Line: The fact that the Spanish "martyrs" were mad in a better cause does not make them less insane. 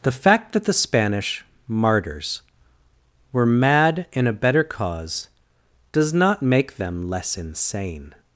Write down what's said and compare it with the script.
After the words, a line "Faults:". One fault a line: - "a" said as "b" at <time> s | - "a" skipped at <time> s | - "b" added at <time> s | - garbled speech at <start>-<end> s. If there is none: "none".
The fact that the Spanish "martyrs" were mad in a better cause does not make them less insane.
Faults:
none